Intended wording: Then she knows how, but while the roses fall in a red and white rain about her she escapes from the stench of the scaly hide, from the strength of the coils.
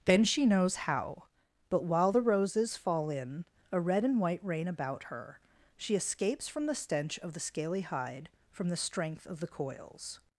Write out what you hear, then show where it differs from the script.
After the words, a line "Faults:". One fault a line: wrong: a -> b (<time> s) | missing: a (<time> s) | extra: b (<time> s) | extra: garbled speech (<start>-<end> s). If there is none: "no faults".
Then she knows how, but while the roses fall in a red and white rain about her she escapes from the stench of the scaly hide, from the strength of the coils.
Faults:
no faults